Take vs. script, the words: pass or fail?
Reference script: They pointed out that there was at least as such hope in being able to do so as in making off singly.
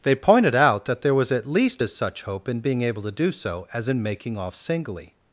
pass